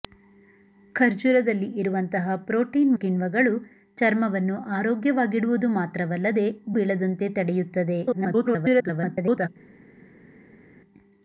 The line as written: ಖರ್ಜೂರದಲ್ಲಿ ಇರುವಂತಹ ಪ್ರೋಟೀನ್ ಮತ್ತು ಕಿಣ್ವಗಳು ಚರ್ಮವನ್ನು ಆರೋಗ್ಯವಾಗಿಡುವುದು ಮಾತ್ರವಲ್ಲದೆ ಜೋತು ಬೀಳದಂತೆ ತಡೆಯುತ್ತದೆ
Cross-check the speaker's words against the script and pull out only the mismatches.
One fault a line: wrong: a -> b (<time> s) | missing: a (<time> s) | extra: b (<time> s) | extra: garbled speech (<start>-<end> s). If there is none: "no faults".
missing: ಮತ್ತು (3.0 s)
missing: ಜೋತು (6.5 s)
extra: garbled speech (8.1-9.5 s)